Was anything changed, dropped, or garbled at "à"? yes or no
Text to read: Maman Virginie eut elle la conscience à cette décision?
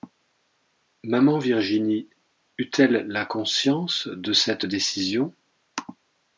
yes